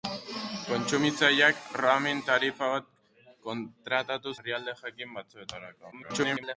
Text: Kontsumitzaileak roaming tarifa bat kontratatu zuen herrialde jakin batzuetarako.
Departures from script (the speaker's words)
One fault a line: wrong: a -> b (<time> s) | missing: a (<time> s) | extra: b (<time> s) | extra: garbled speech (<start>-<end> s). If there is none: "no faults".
missing: zuen (4.3 s)
extra: garbled speech (5.9-6.6 s)